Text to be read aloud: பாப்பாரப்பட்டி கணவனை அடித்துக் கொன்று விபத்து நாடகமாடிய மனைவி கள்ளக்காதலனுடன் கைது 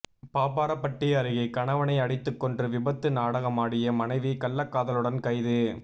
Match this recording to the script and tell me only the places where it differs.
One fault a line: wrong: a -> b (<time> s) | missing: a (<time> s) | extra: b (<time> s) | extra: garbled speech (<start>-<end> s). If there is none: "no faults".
extra: அருகே (1.1 s)